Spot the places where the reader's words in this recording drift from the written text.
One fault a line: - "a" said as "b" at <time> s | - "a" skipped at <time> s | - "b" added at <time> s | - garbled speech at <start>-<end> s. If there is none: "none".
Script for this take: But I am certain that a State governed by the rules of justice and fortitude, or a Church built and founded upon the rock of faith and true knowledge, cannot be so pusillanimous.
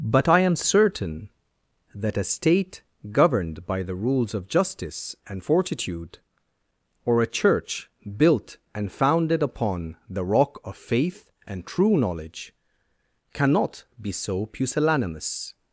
none